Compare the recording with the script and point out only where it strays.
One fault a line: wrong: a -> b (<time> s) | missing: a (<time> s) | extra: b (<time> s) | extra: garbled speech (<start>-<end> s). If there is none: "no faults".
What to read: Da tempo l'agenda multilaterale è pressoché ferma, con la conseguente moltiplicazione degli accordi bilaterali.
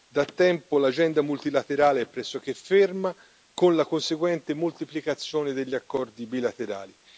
no faults